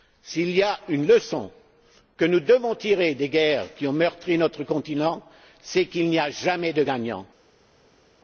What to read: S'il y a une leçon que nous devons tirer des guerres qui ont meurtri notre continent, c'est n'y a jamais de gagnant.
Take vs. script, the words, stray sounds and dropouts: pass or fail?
fail